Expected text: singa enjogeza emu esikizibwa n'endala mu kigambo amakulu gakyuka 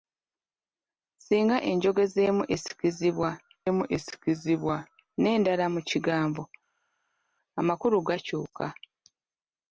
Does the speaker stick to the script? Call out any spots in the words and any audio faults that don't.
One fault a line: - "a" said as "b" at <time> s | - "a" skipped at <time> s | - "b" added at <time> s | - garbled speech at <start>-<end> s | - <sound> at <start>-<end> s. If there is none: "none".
- "emu esikizibwa" added at 3.7 s